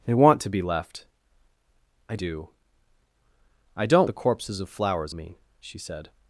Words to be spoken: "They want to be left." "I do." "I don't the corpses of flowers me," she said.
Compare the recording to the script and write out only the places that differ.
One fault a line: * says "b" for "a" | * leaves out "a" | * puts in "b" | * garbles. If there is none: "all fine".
all fine